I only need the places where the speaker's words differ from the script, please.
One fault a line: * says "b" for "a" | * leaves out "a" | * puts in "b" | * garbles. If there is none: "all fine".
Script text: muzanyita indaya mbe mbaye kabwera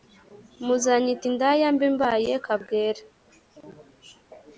all fine